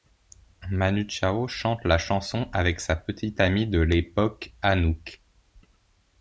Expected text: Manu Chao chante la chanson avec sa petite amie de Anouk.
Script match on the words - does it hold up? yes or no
no